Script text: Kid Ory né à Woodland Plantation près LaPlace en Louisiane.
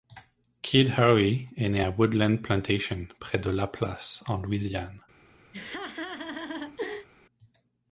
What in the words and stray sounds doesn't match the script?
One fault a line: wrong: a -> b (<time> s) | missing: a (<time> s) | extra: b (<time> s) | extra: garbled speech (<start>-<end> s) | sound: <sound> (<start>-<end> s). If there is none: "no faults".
extra: est (1.6 s)
extra: de (3.4 s)
sound: laugh (5.5-7.1 s)